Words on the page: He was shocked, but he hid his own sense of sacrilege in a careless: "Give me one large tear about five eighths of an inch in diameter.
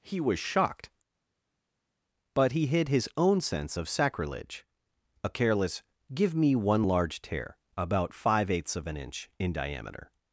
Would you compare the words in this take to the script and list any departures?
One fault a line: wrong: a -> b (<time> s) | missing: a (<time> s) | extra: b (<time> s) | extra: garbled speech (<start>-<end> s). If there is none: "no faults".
missing: in (4.7 s)